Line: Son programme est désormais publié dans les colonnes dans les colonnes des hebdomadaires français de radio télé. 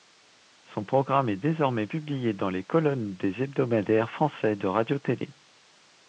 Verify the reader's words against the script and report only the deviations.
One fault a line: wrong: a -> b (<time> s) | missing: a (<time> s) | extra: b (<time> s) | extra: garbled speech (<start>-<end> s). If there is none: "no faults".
missing: dans les colonnes (3.2 s)